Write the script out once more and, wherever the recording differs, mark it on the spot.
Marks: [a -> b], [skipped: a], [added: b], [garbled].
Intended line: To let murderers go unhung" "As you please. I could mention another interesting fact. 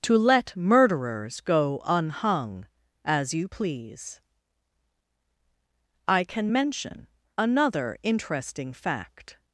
To let murderers go unhung" "As you please. I [could -> can] mention another interesting fact.